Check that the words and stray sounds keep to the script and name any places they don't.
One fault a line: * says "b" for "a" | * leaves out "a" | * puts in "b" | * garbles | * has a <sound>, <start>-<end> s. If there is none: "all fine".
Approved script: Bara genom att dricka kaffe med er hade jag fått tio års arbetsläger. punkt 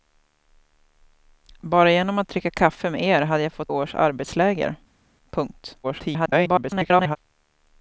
* leaves out "tio"
* garbles